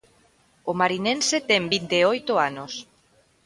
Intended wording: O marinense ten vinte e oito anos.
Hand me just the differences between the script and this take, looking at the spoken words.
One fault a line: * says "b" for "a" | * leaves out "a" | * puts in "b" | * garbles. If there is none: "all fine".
all fine